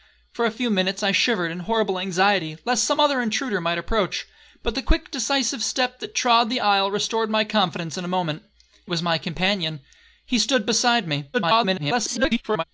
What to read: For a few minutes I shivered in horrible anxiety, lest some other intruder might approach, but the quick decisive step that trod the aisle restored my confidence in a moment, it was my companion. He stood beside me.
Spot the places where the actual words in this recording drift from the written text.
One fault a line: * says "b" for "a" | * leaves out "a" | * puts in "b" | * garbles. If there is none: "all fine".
* leaves out "it"
* garbles